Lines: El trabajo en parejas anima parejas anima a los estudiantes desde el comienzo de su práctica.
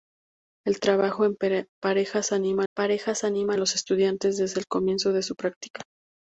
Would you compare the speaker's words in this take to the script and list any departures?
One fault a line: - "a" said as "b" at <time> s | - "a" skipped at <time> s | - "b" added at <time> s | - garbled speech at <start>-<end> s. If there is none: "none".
none